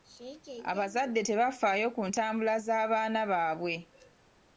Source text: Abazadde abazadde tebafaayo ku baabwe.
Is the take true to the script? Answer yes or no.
no